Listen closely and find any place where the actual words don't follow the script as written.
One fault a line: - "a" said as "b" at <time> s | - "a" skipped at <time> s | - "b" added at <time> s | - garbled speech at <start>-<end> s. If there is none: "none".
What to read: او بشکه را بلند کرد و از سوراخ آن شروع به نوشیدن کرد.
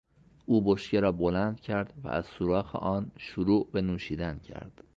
none